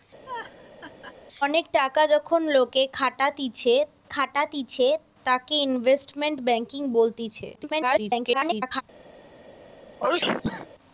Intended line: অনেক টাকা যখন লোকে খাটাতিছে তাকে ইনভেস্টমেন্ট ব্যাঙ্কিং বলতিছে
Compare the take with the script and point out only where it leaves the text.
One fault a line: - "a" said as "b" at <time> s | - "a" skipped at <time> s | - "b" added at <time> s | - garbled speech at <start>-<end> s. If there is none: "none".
- "খাটাতিছে" added at 4.1 s
- garbled speech at 7.6-8.8 s